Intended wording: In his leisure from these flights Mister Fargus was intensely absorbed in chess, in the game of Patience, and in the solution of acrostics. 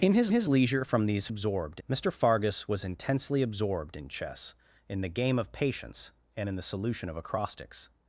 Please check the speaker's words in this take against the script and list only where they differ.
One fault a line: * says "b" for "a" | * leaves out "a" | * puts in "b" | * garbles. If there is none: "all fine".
* puts in "his"
* says "absorbed" for "flights"